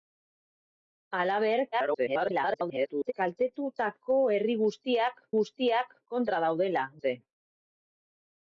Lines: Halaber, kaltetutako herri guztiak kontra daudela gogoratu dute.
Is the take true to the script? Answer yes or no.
no